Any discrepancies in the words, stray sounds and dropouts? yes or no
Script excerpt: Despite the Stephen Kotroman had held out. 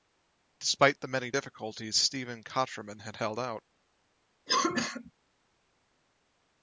yes